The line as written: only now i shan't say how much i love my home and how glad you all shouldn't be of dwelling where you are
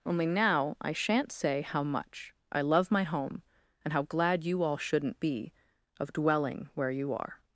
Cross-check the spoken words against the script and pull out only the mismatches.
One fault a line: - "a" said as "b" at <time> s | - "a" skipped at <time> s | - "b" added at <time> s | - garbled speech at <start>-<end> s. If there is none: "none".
none